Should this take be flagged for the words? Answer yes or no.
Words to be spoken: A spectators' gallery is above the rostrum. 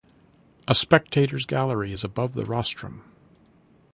no